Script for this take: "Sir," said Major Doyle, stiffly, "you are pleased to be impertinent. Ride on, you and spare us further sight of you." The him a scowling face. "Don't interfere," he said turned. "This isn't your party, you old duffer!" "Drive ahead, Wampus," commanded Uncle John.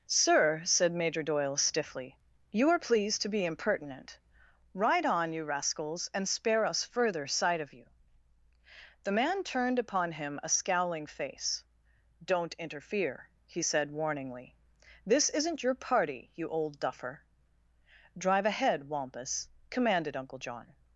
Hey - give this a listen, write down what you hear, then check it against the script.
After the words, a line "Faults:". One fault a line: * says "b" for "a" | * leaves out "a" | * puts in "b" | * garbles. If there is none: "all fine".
"Sir," said Major Doyle, stiffly, "you are pleased to be impertinent. Ride on, you rascals, and spare us further sight of you." The man turned upon him a scowling face. "Don't interfere," he said warningly. "This isn't your party, you old duffer!" "Drive ahead, Wampus," commanded Uncle John.
Faults:
* puts in "rascals"
* puts in "man turned upon"
* says "warningly" for "turned"